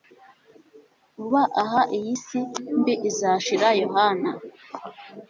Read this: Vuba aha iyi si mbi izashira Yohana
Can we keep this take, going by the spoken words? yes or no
yes